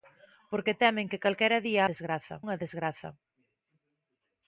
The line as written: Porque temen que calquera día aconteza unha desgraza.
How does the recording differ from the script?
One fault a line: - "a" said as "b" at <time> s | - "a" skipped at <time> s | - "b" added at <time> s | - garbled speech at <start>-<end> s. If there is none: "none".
- "aconteza" said as "desgraza" at 1.9 s